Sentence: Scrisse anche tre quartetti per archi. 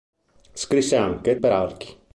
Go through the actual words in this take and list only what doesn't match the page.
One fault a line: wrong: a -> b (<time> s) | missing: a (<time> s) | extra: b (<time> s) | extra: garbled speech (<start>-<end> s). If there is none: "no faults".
missing: tre quartetti (1.4 s)